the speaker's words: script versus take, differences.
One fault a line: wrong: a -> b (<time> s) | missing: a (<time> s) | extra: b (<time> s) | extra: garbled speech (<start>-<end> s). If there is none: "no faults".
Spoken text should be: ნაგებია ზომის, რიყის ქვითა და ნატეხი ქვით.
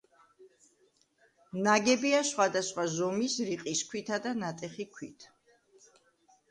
extra: სხვადასხვა (2.3 s)